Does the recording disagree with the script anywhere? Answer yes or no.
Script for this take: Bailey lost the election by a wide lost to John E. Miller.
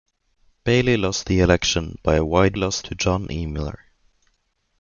no